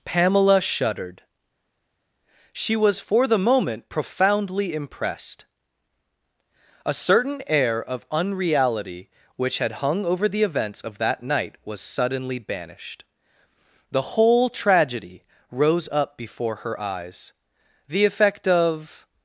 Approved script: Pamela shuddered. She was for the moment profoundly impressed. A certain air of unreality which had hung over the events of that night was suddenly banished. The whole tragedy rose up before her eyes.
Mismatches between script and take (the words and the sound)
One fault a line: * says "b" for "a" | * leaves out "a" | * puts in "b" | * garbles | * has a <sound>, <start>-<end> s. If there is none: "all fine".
* puts in "The effect of"